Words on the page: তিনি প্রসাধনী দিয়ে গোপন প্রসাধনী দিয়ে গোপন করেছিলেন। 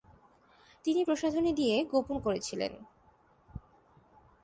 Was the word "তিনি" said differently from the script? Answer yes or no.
no